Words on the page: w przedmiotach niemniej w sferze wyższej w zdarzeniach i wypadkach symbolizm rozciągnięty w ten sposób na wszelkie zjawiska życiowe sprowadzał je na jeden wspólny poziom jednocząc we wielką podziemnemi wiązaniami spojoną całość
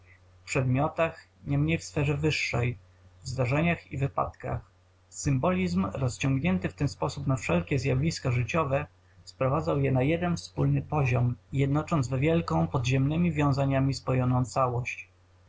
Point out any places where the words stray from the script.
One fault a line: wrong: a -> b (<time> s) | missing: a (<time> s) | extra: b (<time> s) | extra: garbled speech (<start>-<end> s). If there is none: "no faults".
no faults